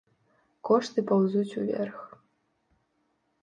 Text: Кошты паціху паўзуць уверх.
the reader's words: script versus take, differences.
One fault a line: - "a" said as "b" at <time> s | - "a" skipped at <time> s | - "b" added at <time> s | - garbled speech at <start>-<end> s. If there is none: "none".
- "паціху" skipped at 1.0 s